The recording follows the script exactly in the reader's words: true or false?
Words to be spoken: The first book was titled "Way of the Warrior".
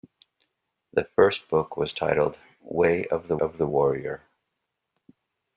false